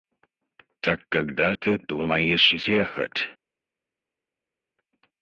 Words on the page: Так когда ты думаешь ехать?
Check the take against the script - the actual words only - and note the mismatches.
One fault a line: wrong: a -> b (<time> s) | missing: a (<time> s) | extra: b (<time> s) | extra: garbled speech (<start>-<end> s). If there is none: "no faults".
no faults